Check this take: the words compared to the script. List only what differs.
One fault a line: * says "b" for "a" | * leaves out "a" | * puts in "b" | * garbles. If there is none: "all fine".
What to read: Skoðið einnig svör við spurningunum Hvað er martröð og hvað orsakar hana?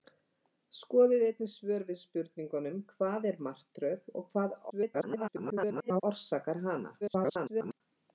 * garbles
* garbles